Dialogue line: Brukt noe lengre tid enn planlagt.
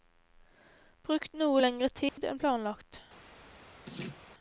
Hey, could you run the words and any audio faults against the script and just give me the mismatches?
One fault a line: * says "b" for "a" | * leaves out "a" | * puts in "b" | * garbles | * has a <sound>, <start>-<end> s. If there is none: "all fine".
* has a dropout, 2.1-2.2 s
* has a laugh, 3.9-4.2 s